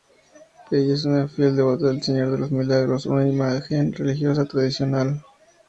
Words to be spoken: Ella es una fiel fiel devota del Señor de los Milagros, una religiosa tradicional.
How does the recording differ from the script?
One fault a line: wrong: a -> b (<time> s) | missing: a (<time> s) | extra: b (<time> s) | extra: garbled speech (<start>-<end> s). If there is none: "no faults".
missing: fiel (1.6 s)
extra: imagen (3.3 s)